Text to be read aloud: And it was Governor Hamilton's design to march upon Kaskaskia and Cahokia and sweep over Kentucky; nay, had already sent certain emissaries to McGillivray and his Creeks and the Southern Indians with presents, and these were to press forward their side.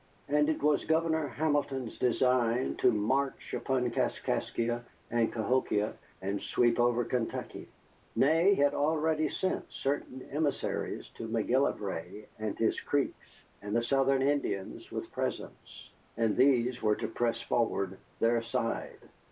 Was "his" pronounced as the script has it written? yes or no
yes